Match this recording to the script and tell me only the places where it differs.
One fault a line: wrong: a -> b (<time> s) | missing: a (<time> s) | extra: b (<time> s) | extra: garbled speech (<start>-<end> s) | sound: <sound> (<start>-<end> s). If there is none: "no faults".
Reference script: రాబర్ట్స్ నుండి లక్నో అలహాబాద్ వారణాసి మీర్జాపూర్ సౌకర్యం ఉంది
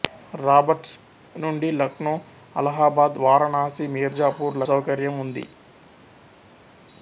no faults